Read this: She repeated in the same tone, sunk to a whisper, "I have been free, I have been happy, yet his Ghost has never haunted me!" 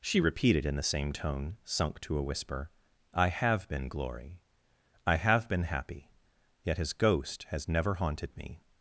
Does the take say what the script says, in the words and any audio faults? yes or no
no